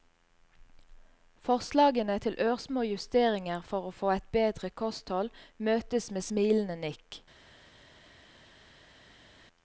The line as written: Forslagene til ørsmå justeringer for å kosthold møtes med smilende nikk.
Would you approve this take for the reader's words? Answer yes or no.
no